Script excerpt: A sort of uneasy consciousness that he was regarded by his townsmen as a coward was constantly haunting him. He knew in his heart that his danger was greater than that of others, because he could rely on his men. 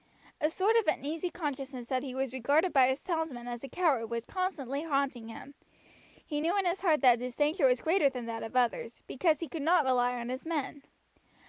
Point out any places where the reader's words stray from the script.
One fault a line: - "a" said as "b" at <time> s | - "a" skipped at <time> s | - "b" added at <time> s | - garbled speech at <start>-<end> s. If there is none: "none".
- "not" added at 9.6 s